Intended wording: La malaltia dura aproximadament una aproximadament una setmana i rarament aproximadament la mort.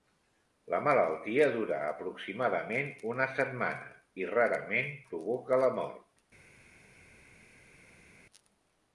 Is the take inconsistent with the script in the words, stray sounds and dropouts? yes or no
yes